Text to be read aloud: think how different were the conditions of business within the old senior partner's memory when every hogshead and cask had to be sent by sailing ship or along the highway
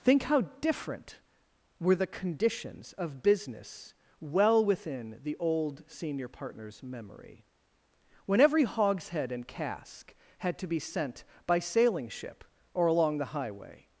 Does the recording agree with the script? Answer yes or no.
no